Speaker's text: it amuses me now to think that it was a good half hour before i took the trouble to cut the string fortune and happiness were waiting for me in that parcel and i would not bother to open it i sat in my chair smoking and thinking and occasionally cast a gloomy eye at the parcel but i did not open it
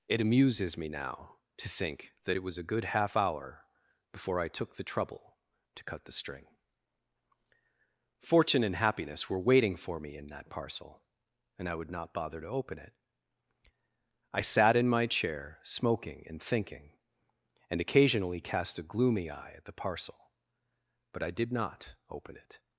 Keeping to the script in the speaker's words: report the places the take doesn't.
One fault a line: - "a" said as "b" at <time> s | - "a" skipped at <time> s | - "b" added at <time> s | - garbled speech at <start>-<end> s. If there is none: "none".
none